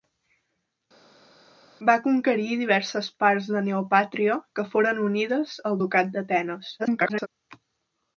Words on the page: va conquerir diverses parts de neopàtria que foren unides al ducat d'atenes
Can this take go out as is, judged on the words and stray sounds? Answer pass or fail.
fail